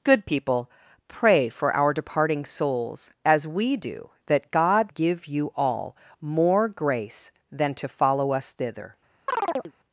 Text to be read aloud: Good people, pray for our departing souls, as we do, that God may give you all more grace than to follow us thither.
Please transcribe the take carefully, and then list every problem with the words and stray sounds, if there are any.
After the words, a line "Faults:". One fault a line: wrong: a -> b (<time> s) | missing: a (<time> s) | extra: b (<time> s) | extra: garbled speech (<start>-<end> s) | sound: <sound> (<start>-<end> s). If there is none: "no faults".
Good people, pray for our departing souls, as we do, that God give you all more grace than to follow us thither.
Faults:
missing: may (4.9 s)
sound: chirp (9.3-9.7 s)